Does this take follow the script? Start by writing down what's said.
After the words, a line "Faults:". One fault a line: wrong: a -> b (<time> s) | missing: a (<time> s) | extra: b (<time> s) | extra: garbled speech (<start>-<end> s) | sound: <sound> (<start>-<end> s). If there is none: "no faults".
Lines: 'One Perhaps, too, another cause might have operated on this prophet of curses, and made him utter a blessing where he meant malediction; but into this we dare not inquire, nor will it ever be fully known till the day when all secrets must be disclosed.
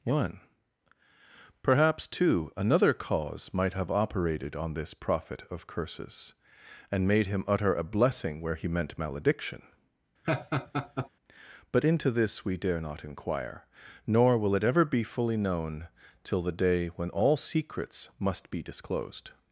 'One Perhaps, too, another cause might have operated on this prophet of curses, and made him utter a blessing where he meant malediction; but into this we dare not inquire, nor will it ever be fully known till the day when all secrets must be disclosed.
Faults:
sound: laugh (10.2-11.1 s)